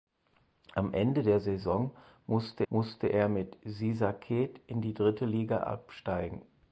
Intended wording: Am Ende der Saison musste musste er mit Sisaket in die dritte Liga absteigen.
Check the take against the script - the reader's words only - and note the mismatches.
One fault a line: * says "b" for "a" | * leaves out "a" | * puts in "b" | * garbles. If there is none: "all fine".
all fine